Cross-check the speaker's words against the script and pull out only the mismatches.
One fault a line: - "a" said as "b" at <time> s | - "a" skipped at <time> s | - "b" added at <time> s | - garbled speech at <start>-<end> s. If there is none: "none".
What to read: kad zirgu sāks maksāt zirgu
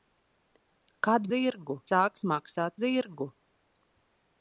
none